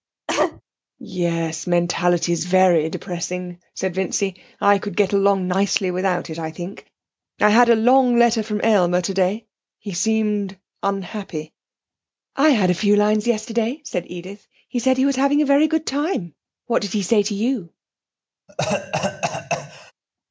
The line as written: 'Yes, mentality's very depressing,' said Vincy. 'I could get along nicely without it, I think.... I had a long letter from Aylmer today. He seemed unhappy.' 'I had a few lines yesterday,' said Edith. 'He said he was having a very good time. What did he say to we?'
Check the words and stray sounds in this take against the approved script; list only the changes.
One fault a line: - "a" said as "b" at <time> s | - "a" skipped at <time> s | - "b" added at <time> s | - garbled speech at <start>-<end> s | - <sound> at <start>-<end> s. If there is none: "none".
- cough at 0.3-0.6 s
- "we" said as "you" at 17.3 s
- cough at 18.5-19.9 s